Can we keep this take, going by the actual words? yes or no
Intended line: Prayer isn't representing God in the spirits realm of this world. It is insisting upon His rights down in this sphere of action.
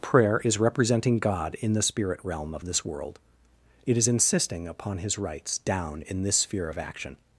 no